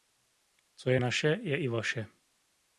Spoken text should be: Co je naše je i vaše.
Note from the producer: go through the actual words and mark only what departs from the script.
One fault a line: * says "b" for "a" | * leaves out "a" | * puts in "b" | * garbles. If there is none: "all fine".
all fine